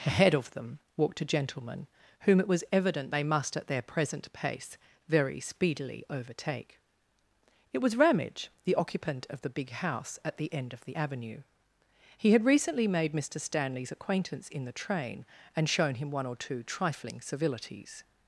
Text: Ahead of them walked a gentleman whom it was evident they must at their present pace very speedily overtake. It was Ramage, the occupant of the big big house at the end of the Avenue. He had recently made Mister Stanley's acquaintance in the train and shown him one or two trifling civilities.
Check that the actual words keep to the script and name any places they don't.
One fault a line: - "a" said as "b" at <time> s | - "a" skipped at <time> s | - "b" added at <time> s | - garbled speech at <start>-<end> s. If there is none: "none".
- "big" skipped at 9.7 s